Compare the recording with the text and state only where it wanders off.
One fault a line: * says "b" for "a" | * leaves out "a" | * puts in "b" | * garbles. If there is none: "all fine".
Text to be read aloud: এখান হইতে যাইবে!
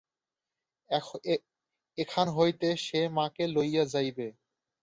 * puts in "সে মাকে লইয়া"